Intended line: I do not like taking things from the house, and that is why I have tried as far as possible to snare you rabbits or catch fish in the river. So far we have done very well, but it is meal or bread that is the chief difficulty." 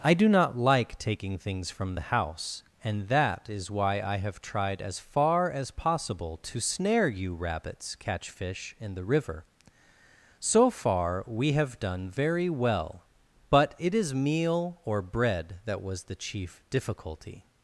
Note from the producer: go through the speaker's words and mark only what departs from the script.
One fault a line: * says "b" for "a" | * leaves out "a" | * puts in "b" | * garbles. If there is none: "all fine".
* leaves out "or"
* says "was" for "is"